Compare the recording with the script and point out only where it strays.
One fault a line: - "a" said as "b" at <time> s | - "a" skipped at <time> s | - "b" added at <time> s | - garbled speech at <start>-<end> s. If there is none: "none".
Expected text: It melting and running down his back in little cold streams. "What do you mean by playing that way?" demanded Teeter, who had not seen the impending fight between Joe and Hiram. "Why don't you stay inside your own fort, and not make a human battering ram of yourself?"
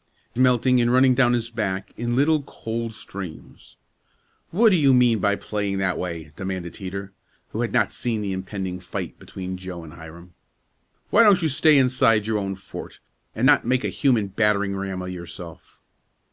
none